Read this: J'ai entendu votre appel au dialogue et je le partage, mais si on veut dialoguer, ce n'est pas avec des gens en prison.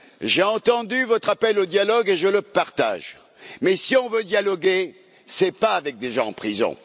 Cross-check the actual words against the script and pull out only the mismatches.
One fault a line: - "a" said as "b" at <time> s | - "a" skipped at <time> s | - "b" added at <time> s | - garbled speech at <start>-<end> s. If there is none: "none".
none